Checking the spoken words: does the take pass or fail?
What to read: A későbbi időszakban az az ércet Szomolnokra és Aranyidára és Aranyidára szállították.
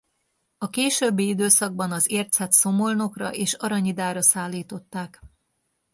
fail